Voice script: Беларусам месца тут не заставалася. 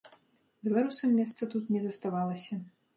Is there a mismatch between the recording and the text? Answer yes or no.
no